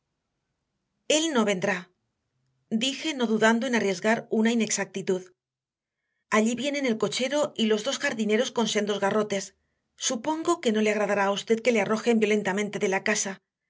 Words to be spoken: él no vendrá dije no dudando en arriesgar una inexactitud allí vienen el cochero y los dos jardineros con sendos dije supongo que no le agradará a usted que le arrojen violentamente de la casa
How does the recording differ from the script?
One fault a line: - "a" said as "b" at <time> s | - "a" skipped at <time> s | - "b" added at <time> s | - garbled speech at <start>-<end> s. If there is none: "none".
- "dije" said as "garrotes" at 9.0 s